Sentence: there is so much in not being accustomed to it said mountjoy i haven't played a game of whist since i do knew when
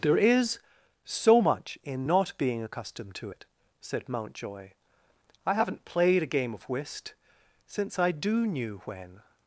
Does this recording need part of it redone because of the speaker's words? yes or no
no